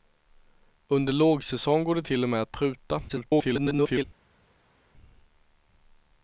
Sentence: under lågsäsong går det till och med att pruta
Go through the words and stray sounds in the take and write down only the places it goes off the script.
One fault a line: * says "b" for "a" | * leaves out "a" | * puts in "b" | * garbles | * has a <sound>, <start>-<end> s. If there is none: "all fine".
* garbles